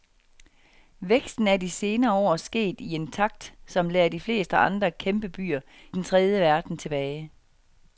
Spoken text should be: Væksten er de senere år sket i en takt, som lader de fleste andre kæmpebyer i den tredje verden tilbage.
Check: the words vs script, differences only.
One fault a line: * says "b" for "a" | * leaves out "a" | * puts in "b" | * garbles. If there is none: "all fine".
* leaves out "i"